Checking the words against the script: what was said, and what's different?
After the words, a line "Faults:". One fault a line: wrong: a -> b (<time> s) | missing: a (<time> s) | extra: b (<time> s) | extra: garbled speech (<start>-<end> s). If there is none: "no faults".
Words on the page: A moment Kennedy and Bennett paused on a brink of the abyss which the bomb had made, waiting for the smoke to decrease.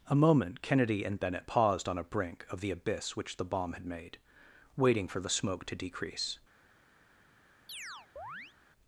A moment Kennedy and Bennett paused on a brink of the abyss which the bomb had made, waiting for the smoke to decrease.
Faults:
no faults